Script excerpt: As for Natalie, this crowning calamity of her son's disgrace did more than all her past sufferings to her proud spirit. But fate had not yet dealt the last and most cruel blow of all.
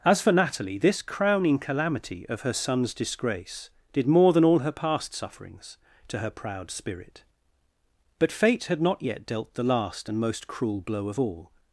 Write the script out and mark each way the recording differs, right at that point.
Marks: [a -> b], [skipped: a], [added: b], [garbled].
As for Natalie, this crowning calamity of her son's disgrace did more than all her past sufferings to her proud spirit. But fate had not yet dealt the last and most cruel blow of all.